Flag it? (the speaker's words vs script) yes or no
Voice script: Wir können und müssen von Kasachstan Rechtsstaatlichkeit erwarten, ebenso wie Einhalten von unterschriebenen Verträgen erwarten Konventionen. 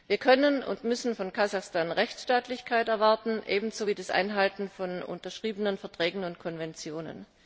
yes